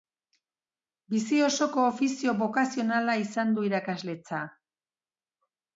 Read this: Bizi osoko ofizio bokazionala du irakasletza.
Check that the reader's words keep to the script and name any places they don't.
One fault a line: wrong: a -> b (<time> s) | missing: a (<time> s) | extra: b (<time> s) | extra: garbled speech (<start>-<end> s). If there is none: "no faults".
extra: izan (3.3 s)